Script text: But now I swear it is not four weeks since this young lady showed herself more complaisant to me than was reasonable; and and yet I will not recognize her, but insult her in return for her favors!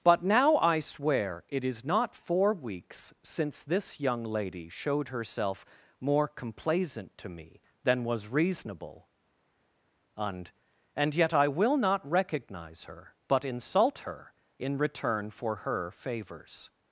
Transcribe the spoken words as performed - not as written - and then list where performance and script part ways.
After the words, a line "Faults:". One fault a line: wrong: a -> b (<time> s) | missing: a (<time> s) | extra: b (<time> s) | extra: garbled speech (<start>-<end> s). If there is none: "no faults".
But now I swear it is not four weeks since this young lady showed herself more complaisant to me than was reasonable; and and yet I will not recognize her, but insult her in return for her favors!
Faults:
no faults